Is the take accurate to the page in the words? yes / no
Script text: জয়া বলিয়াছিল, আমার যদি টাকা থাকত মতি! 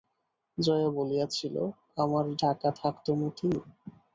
no